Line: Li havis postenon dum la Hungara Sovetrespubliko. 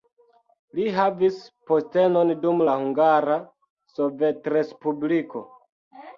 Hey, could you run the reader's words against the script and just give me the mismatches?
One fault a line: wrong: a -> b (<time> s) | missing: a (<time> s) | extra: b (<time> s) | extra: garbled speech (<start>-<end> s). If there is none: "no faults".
no faults